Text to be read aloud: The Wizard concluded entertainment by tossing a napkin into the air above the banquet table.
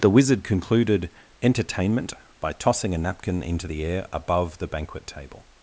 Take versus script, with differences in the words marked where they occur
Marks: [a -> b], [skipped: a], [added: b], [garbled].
The Wizard concluded entertainment by tossing a napkin into the air above the banquet table.